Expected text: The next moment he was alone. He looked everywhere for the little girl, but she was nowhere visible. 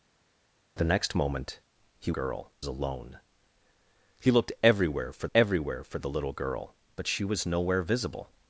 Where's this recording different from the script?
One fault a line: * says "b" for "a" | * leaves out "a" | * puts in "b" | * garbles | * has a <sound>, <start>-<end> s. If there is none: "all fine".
* says "girl" for "was"
* puts in "everywhere for"